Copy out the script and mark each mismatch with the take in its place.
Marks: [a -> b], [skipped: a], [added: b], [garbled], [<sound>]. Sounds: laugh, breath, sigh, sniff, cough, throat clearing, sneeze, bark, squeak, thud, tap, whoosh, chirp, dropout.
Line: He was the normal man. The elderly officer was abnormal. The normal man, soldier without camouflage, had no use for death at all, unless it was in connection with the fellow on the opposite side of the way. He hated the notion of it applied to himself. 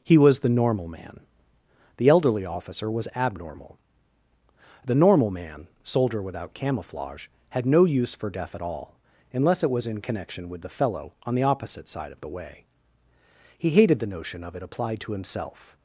He was the normal man. The elderly officer was abnormal. The normal man, soldier without camouflage, had no use for death at all, unless it was in connection with the fellow on the opposite side of the way. He hated the notion of it applied to himself.